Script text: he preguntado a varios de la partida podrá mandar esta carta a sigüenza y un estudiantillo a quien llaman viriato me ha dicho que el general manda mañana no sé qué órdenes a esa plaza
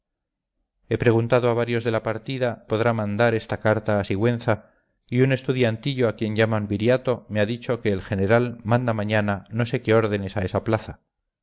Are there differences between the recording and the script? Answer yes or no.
no